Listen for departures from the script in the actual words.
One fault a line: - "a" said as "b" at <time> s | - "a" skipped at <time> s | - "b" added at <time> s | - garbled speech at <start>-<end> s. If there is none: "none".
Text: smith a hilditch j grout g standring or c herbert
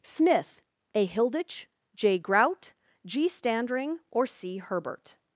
none